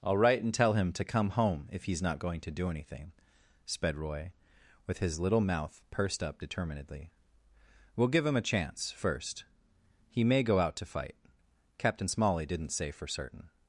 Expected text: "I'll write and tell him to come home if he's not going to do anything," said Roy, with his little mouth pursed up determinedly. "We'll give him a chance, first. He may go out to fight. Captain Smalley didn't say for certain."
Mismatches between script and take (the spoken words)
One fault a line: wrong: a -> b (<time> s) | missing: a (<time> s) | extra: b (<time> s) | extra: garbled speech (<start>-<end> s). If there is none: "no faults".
wrong: said -> sped (3.7 s)